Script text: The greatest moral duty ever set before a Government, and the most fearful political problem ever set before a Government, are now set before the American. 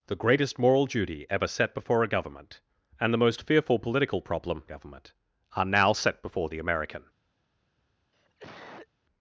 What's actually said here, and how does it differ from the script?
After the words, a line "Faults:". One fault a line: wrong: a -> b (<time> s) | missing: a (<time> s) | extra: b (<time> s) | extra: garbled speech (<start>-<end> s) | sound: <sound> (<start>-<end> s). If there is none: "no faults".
The greatest moral duty ever set before a Government, and the most fearful political problem a Government, are now set before the American.
Faults:
missing: ever set before (4.6 s)
sound: cough (8.1-8.9 s)